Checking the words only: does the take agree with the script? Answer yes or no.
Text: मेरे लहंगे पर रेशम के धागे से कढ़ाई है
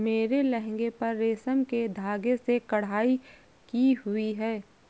no